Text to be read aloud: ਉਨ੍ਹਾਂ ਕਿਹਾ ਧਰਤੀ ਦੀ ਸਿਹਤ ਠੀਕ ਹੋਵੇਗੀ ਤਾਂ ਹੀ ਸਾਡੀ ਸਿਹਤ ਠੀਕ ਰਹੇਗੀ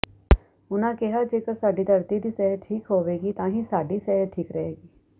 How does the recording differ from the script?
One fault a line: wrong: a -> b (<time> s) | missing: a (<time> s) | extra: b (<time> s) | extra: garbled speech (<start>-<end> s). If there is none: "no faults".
extra: ਜੇਕਰ ਸਾਡੀ (1.2 s)